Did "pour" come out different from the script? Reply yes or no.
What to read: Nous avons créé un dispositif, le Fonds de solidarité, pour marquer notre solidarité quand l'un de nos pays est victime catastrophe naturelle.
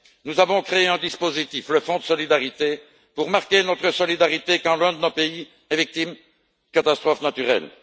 no